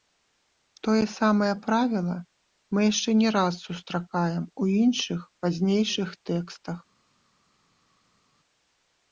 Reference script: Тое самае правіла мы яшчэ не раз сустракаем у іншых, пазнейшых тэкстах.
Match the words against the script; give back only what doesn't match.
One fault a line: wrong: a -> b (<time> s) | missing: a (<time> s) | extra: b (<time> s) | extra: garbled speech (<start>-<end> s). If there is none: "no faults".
no faults